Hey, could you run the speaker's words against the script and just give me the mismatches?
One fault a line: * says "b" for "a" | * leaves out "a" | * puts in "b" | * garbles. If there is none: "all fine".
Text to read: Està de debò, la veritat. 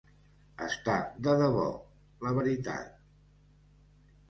all fine